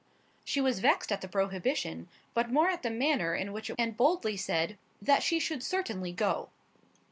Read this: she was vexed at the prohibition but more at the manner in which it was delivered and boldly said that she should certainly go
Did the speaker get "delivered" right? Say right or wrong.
wrong